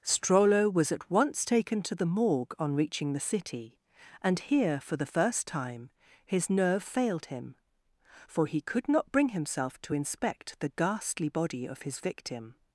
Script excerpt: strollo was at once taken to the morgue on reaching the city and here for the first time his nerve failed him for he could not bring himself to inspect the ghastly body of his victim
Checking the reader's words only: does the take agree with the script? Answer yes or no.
yes